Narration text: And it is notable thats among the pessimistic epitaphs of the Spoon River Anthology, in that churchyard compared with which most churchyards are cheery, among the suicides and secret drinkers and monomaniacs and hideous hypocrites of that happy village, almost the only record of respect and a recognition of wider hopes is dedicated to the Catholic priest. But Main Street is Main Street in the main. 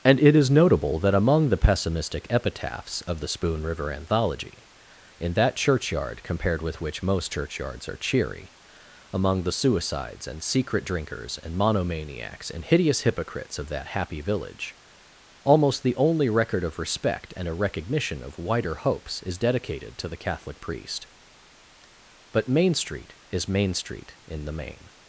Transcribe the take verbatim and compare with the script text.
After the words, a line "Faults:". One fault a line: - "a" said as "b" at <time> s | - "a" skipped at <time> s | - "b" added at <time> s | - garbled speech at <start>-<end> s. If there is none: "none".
And it is notable that among the pessimistic epitaphs of the Spoon River Anthology, in that churchyard compared with which most churchyards are cheery, among the suicides and secret drinkers and monomaniacs and hideous hypocrites of that happy village, almost the only record of respect and a recognition of wider hopes is dedicated to the Catholic priest. But Main Street is Main Street in the main.
Faults:
- "thats" said as "that" at 1.0 s